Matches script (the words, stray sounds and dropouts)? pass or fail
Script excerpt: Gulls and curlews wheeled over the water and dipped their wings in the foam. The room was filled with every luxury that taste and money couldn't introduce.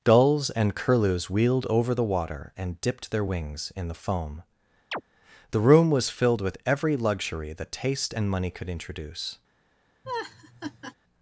fail